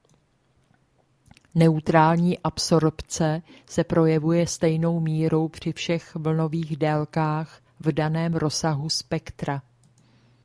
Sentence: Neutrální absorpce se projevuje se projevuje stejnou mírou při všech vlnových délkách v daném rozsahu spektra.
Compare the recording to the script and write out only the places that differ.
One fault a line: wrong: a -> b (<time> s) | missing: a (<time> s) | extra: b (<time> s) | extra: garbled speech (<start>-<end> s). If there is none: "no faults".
missing: se projevuje (4.5 s)